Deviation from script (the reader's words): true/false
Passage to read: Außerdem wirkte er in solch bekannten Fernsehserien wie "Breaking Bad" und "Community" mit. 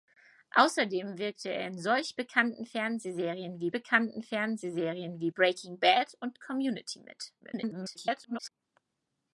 true